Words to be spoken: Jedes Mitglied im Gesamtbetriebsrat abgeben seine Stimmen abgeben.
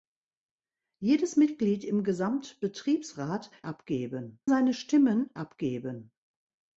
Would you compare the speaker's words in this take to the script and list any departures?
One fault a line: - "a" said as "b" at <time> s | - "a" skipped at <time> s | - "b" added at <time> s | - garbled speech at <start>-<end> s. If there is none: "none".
none